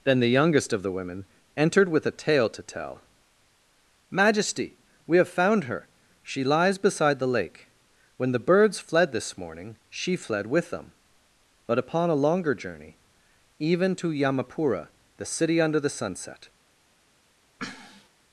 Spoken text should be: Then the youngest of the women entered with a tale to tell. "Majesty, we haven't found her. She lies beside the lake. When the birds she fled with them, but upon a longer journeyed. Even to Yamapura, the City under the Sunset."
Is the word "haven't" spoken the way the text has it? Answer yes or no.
no